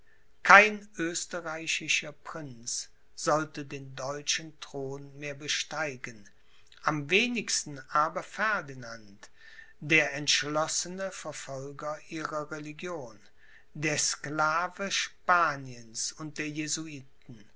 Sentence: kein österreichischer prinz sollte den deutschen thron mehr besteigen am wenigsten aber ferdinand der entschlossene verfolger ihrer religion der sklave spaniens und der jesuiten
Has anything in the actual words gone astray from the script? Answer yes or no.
no